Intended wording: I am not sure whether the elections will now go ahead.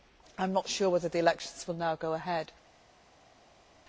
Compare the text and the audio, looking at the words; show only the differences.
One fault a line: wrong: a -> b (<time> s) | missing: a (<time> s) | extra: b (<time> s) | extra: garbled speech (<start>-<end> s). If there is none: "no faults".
no faults